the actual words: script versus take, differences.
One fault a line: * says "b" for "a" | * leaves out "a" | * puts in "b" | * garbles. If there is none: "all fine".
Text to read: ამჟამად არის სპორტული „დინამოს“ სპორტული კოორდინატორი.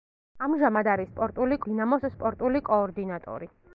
all fine